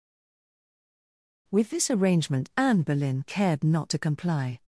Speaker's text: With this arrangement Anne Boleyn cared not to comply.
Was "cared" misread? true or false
false